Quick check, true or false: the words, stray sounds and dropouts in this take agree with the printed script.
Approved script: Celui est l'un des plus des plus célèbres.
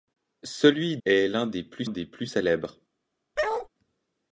false